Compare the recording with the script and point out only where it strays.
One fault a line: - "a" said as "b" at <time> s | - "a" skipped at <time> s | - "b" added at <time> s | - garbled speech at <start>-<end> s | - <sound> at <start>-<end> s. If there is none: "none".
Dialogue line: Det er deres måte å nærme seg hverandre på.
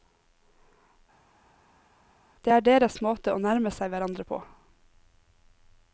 none